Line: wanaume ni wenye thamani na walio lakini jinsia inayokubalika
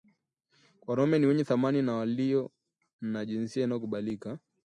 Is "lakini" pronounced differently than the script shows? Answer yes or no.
yes